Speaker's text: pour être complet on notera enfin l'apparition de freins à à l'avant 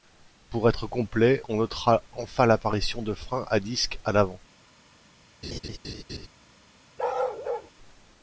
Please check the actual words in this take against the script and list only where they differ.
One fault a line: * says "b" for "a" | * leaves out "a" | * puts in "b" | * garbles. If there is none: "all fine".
* puts in "disque"